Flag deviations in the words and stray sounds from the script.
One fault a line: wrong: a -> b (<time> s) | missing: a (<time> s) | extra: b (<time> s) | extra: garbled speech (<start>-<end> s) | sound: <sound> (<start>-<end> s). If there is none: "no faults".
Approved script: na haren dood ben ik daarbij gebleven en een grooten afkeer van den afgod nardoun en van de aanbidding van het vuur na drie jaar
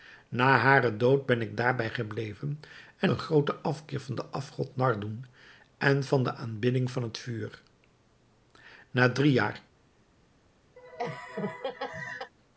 sound: laugh (10.8-12.3 s)